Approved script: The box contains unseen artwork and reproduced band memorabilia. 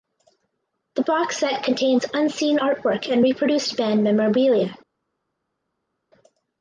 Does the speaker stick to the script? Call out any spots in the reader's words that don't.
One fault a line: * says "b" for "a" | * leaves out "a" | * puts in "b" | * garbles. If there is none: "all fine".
* puts in "set"